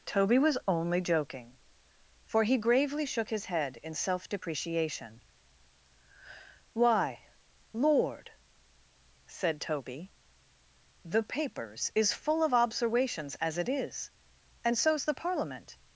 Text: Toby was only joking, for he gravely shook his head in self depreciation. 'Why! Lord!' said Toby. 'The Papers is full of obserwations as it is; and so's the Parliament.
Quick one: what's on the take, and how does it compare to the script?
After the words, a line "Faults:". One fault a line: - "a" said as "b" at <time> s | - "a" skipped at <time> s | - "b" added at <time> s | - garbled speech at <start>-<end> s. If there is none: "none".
Toby was only joking, for he gravely shook his head in self depreciation. 'Why! Lord!' said Toby. 'The Papers is full of obserwations as it is; and so's the Parliament.
Faults:
none